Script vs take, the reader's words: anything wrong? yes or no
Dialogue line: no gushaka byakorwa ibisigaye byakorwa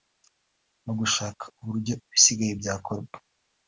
yes